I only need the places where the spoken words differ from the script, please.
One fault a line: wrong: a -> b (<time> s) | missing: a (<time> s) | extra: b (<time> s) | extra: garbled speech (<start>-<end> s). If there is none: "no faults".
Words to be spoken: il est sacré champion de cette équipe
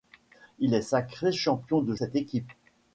no faults